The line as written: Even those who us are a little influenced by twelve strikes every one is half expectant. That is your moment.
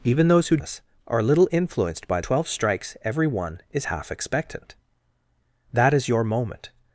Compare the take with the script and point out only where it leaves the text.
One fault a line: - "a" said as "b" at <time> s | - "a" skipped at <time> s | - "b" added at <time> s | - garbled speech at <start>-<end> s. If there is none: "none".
none